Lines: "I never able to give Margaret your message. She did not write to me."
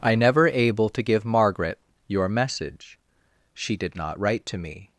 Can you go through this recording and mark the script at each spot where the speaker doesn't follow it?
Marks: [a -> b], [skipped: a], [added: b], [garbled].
"I never able to give Margaret your message. She did not write to me."